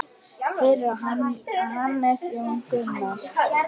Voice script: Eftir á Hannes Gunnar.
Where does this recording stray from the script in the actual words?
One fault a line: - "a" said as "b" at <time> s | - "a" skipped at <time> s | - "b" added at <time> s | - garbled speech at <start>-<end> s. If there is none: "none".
- "Eftir" said as "Fyrir" at 0.6 s
- "Jón" added at 2.3 s